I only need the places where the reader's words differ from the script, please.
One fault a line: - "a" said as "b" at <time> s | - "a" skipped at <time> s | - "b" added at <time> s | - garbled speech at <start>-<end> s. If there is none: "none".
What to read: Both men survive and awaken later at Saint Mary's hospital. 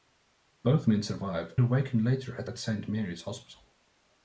- "and" skipped at 1.6 s
- "at" added at 2.4 s